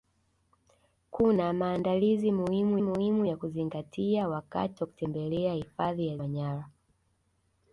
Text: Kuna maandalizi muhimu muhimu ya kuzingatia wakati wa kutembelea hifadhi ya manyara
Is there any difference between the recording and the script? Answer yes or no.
no